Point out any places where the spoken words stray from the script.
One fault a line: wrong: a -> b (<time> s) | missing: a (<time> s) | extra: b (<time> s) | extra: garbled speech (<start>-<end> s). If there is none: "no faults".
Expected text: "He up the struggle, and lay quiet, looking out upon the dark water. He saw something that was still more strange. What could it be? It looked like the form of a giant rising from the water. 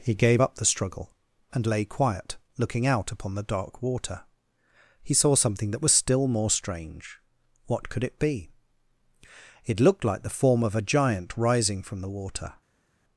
extra: gave (0.1 s)